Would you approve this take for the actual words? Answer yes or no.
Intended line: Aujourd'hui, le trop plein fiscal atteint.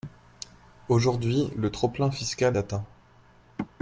yes